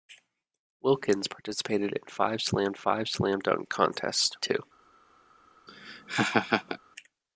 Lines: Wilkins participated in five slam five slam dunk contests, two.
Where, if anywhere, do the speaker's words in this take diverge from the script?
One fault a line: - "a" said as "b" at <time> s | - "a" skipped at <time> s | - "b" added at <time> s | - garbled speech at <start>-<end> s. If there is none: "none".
none